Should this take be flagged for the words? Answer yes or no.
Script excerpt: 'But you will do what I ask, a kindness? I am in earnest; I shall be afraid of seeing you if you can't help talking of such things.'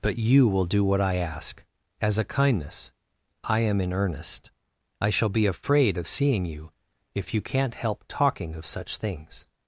yes